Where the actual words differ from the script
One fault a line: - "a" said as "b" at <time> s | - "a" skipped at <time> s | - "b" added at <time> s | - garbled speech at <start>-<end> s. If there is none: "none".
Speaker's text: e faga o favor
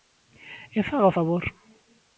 none